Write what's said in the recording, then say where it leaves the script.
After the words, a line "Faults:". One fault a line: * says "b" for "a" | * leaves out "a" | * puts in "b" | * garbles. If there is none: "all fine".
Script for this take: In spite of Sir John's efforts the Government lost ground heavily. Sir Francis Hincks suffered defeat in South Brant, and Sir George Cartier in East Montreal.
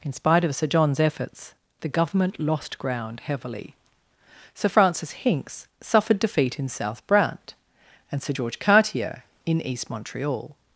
In spite of Sir John's efforts the Government lost ground heavily. Sir Francis Hincks suffered defeat in South Brant, and Sir George Cartier in East Montreal.
Faults:
all fine